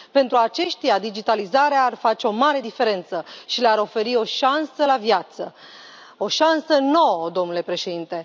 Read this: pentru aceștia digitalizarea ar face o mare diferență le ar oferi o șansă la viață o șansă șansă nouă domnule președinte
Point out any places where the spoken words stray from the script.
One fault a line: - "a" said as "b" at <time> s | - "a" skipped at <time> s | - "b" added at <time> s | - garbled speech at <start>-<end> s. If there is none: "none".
- "și" added at 3.4 s
- "șansă" skipped at 6.8 s